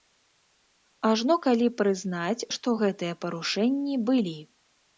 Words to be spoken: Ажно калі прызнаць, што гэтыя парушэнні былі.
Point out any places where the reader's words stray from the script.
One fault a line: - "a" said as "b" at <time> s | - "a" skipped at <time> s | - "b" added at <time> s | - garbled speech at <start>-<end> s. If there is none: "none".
none